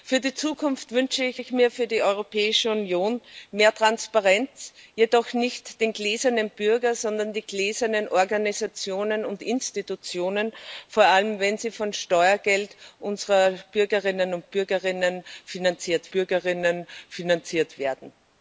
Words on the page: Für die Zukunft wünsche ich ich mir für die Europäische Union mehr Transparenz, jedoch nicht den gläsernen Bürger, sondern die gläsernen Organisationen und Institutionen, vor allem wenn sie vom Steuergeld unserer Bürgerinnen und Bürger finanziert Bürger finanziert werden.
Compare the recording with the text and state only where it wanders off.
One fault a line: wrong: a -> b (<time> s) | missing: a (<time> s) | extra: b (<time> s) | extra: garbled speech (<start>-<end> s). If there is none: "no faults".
no faults